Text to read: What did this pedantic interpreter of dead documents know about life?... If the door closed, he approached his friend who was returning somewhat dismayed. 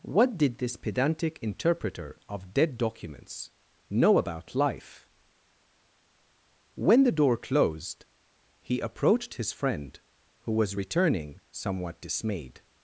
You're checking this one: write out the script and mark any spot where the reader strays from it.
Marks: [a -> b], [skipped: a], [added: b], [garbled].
What did this pedantic interpreter of dead documents know about life?... [If -> When] the door closed, he approached his friend who was returning somewhat dismayed.